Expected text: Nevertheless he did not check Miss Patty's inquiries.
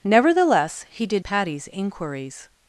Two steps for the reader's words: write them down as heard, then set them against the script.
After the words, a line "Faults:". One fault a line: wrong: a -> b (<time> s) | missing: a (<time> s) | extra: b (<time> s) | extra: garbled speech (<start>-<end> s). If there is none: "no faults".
Nevertheless he did Patty's inquiries.
Faults:
missing: not check Miss (1.2 s)